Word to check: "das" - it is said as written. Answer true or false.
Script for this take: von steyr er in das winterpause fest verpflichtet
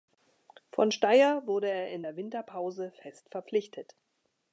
false